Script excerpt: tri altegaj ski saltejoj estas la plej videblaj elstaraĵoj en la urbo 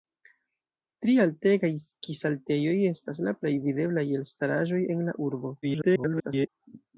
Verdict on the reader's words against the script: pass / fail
fail